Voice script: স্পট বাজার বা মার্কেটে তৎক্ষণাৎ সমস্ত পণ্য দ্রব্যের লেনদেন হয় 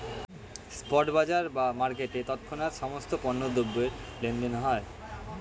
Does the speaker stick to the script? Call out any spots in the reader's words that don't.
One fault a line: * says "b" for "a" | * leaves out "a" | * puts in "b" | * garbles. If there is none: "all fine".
all fine